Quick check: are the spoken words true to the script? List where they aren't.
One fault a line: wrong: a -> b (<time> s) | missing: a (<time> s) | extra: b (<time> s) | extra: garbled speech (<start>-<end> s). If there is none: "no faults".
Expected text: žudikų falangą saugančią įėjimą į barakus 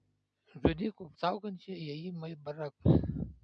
missing: falangą (1.1 s)